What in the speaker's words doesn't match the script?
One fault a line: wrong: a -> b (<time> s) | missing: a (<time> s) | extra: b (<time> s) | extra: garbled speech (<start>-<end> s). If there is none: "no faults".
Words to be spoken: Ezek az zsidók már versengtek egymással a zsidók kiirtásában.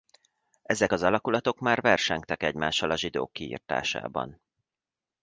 wrong: zsidók -> alakulatok (1.0 s)